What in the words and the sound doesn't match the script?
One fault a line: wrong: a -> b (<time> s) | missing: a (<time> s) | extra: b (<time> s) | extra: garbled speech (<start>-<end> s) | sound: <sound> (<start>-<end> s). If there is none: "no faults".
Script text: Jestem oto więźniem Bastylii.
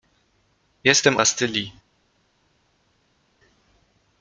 missing: oto więźniem (1.2 s)